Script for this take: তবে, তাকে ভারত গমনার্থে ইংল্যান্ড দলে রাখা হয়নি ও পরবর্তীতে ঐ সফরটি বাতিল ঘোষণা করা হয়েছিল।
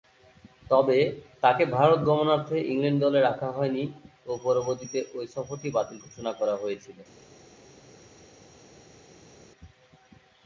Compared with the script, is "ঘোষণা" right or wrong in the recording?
right